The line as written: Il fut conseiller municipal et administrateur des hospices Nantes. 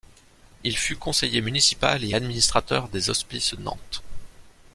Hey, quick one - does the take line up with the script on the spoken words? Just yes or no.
yes